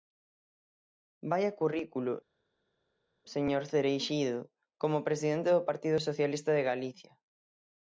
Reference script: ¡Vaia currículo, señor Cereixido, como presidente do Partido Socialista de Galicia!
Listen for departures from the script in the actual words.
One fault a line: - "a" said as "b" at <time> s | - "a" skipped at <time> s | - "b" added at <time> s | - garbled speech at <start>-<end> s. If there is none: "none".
none